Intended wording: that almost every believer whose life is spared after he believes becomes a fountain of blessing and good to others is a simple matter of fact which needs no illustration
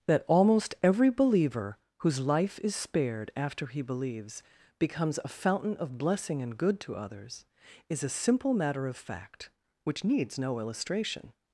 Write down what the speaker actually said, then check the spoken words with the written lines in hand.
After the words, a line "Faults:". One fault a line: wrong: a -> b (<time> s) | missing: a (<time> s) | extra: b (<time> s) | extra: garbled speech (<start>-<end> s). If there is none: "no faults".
that almost every believer whose life is spared after he believes becomes a fountain of blessing and good to others is a simple matter of fact which needs no illustration
Faults:
no faults